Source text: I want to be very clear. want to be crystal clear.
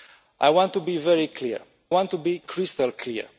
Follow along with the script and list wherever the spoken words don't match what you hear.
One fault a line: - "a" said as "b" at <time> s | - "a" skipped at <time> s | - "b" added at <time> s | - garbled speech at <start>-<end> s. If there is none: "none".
none